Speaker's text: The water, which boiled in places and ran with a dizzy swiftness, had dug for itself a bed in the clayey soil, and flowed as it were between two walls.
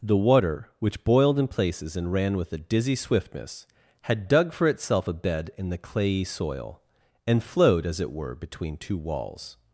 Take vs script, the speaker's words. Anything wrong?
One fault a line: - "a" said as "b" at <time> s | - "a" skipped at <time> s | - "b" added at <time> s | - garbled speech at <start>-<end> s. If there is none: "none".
none